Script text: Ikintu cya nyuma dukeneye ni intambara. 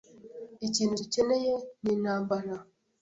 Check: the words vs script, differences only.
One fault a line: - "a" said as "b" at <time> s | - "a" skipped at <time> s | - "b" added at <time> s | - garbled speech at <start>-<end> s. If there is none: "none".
- "cya nyuma" skipped at 0.9 s